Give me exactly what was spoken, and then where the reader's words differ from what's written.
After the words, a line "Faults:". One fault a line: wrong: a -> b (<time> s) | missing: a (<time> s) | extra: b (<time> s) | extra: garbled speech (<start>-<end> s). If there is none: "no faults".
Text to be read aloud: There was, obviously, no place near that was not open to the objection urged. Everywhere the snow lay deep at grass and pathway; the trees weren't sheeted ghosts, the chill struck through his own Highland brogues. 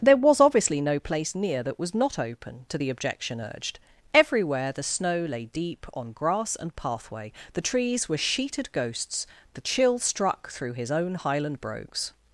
There was, obviously, no place near that was not open to the objection urged. Everywhere the snow lay deep on grass and pathway; the trees were sheeted ghosts, the chill struck through his own Highland brogues.
Faults:
wrong: at -> on (5.9 s)
wrong: weren't -> were (8.1 s)